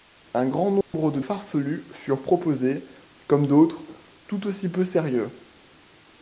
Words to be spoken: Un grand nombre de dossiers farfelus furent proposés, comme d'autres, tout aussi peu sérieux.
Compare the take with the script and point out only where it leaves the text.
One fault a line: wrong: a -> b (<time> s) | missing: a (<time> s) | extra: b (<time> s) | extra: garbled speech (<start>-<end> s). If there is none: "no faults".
missing: dossiers (1.2 s)